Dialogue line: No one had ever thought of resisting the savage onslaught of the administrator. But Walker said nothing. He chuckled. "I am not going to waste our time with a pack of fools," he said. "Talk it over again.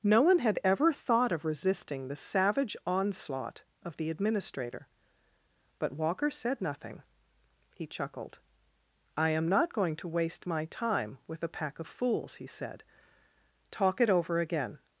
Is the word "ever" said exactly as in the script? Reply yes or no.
yes